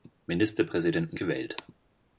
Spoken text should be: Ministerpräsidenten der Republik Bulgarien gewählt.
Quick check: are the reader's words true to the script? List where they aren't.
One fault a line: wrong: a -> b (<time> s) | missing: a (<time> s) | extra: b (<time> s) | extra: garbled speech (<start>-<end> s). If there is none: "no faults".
missing: der Republik Bulgarien (1.2 s)